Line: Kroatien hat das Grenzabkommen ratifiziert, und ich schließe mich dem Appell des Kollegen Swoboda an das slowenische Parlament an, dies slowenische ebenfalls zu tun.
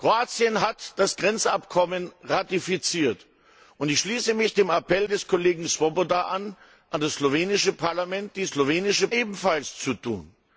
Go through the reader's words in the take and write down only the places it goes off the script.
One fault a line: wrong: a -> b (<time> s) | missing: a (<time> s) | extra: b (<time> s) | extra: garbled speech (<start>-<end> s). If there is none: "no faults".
no faults